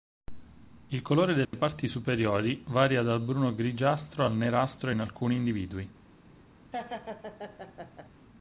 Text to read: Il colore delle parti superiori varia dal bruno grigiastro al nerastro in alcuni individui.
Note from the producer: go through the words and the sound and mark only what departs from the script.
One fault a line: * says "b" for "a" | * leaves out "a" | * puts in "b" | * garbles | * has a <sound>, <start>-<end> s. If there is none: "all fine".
* has a dropout, 1.4-1.5 s
* has a laugh, 6.7-8.1 s